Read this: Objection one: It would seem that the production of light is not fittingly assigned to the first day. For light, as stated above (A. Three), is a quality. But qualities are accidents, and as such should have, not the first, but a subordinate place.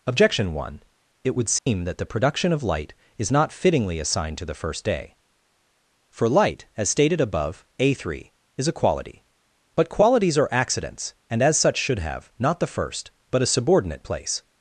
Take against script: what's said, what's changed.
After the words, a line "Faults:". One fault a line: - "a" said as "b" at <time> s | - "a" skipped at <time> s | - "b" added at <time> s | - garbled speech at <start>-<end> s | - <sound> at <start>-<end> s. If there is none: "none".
Objection one: It would seem that the production of light is not fittingly assigned to the first day. For light, as stated above (A. Three), is a quality. But qualities are accidents, and as such should have, not the first, but a subordinate place.
Faults:
- dropout at 1.6-1.7 s